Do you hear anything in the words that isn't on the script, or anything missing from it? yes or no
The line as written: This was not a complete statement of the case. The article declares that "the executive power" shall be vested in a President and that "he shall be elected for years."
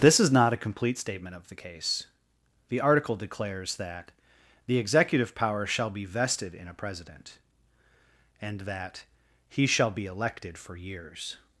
yes